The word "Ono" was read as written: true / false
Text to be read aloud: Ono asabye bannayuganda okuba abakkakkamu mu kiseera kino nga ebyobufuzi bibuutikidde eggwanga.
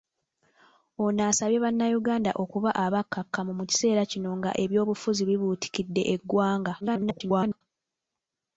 true